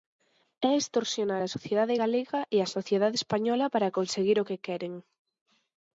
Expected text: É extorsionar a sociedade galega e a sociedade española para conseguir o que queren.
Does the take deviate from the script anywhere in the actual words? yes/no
no